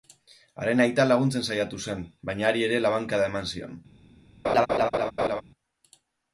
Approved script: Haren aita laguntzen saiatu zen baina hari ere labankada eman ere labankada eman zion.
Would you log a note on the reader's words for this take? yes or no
yes